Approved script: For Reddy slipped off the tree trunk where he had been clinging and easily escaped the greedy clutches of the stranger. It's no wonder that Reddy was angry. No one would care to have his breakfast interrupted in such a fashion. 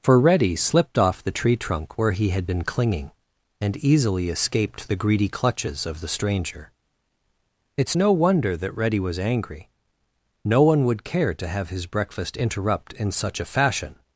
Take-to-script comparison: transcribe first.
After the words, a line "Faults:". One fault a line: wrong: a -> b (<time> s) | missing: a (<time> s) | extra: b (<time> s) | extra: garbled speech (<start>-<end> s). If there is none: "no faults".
For Reddy slipped off the tree trunk where he had been clinging and easily escaped the greedy clutches of the stranger. It's no wonder that Reddy was angry. No one would care to have his breakfast interrupt in such a fashion.
Faults:
wrong: interrupted -> interrupt (12.4 s)